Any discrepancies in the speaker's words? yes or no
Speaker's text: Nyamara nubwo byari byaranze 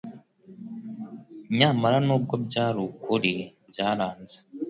yes